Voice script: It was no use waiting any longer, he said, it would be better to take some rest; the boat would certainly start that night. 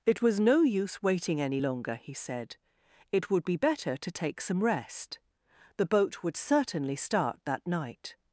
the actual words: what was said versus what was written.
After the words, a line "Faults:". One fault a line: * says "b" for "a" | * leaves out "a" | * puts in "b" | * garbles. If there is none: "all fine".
It was no use waiting any longer, he said, it would be better to take some rest; the boat would certainly start that night.
Faults:
all fine